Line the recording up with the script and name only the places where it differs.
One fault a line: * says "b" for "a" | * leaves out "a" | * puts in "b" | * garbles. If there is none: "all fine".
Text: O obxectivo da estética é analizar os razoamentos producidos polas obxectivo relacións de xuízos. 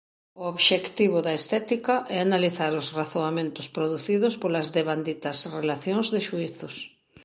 * says "devanditas" for "obxectivo"